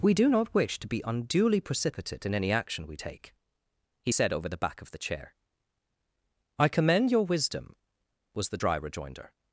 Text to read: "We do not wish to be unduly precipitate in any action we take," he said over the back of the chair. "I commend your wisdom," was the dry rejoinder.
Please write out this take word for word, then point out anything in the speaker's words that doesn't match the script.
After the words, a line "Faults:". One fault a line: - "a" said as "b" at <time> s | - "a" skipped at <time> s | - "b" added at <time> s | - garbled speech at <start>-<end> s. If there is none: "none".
"We do not wish to be unduly precipitate in any action we take," he said over the back of the chair. "I commend your wisdom," was the dry rejoinder.
Faults:
none